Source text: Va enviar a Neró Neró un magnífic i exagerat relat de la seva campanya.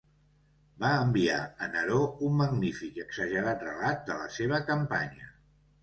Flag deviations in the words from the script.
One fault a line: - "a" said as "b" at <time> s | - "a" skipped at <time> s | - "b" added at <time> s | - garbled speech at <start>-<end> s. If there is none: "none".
- "Neró" skipped at 2.0 s